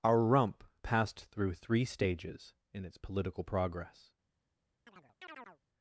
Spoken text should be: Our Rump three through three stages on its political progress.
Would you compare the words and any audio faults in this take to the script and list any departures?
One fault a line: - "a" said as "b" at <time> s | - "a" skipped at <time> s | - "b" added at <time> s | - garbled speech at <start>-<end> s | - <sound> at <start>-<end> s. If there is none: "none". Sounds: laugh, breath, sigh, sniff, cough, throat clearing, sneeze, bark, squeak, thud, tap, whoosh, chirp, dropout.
- "three" said as "passed" at 0.8 s
- "on" said as "in" at 2.7 s
- chirp at 4.9-5.6 s